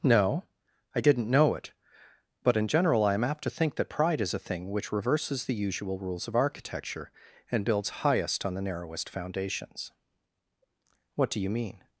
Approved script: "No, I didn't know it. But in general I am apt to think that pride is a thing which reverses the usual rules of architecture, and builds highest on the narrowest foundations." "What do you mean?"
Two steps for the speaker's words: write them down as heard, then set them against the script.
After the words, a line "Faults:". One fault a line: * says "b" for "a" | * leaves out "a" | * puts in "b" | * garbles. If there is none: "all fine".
"No, I didn't know it. But in general I am apt to think that pride is a thing which reverses the usual rules of architecture, and builds highest on the narrowest foundations." "What do you mean?"
Faults:
all fine